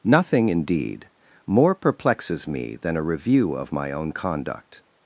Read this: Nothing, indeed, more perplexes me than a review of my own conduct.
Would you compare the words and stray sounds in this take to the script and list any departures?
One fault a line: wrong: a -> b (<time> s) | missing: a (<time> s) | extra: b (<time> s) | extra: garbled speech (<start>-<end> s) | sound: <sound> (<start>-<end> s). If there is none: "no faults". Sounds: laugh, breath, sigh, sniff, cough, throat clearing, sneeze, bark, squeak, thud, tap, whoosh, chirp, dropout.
no faults